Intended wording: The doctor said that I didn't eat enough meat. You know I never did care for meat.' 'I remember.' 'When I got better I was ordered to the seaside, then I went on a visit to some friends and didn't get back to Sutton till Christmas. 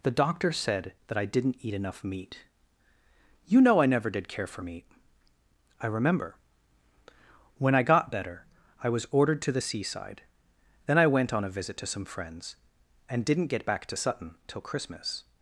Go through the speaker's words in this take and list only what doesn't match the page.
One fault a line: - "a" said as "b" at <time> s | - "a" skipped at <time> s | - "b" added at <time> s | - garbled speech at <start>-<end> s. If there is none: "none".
none